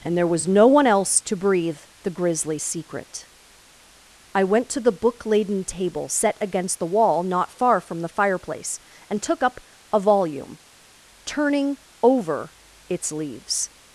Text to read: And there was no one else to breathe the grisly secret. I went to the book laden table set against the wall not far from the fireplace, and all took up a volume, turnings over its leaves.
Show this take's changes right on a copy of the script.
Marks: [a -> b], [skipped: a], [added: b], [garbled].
And there was no one else to breathe the grisly secret. I went to the book laden table set against the wall not far from the fireplace, and [skipped: all] took up a volume, [turnings -> turning] over its leaves.